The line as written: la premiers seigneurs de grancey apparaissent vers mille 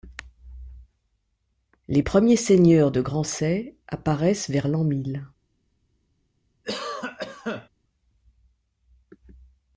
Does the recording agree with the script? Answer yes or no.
no